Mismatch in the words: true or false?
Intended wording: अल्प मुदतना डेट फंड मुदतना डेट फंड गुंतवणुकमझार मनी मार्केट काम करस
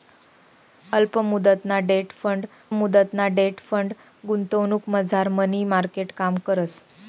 false